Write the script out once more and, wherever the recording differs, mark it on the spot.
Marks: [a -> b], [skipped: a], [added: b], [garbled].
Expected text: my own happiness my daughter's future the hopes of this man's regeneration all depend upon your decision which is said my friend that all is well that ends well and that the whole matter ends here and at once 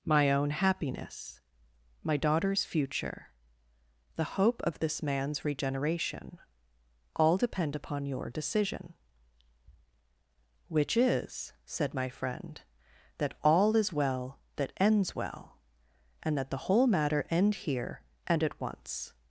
my own happiness my daughter's future the [hopes -> hope] of this man's regeneration all depend upon your decision which is said my friend that all is well that ends well and that the whole matter [ends -> end] here and at once